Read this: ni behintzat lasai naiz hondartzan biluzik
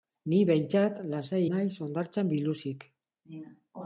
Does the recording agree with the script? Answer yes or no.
yes